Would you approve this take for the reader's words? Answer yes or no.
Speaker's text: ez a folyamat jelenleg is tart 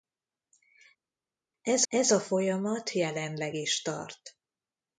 no